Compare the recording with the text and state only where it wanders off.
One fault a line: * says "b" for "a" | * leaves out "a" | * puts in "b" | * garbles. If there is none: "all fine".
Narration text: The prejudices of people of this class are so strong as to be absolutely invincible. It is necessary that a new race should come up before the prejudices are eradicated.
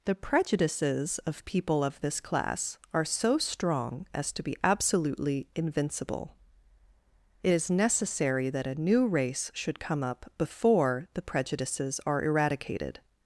all fine